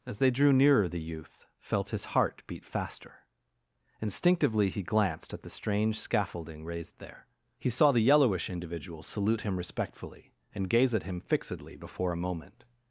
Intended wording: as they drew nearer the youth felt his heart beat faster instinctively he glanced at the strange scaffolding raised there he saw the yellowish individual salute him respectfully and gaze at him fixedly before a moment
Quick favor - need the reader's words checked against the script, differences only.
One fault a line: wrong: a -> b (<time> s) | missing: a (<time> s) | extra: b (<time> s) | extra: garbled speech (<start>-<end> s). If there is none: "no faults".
no faults